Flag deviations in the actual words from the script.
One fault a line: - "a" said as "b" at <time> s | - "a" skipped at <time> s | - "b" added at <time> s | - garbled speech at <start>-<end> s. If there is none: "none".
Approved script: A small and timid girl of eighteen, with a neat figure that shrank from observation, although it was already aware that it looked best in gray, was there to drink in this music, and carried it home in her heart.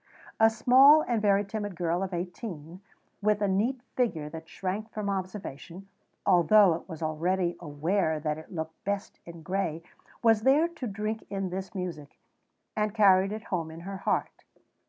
- "very" added at 1.2 s